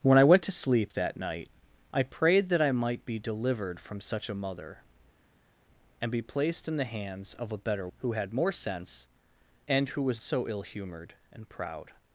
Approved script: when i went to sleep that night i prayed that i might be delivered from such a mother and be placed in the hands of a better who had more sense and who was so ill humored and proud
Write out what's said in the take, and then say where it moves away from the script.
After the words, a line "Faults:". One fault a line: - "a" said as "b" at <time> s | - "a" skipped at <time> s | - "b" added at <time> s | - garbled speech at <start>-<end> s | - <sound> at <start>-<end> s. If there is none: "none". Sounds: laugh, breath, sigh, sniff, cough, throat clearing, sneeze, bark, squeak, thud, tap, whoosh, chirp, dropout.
when i went to sleep that night i prayed that i might be delivered from such a mother and be placed in the hands of a better who had more sense and who was so ill humored and proud
Faults:
none